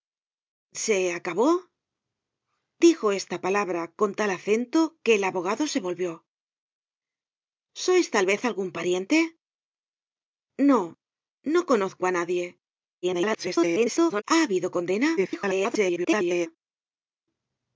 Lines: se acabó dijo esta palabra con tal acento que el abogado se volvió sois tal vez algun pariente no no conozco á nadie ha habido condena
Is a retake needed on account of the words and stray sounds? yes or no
yes